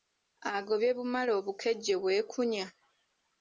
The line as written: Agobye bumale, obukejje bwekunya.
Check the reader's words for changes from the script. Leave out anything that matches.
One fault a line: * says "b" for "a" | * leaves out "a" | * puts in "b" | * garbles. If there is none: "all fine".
all fine